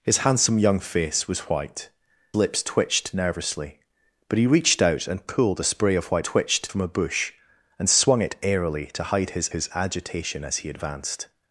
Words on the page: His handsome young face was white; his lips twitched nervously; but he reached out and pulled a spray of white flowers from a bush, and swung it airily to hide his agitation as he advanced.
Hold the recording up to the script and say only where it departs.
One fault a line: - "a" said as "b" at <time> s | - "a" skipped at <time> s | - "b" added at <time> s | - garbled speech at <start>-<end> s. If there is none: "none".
- "his" skipped at 1.9 s
- "flowers" said as "twitched" at 6.2 s
- "his" added at 9.5 s